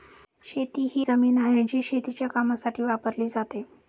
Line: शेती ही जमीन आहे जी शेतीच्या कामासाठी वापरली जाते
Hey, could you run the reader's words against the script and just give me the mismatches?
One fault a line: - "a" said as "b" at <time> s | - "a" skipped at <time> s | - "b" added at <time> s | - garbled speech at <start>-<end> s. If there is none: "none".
none